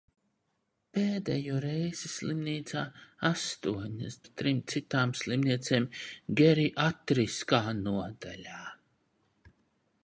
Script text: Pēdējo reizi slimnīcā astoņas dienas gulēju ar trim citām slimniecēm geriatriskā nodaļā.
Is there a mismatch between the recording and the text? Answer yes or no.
yes